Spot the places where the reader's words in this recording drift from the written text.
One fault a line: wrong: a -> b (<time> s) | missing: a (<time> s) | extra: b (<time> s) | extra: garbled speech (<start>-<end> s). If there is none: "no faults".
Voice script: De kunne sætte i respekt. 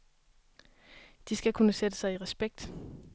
extra: skal (1.4 s)
extra: sig (2.0 s)